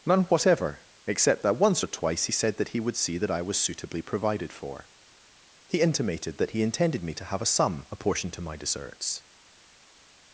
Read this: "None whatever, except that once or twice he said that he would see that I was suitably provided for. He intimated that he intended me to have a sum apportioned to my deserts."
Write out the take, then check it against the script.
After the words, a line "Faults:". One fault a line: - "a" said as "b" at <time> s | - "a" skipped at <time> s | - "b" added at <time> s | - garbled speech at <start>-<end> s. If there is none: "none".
"None whatever, except that once or twice he said that he would see that I was suitably provided for. He intimated that he intended me to have a sum apportioned to my deserts."
Faults:
none